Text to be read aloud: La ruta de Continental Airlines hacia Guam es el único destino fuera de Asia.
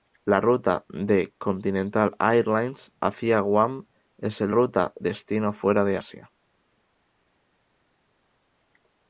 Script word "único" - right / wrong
wrong